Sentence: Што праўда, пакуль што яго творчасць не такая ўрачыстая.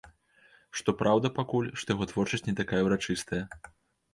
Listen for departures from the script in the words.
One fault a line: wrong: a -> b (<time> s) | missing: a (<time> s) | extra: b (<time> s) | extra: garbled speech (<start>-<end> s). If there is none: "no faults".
no faults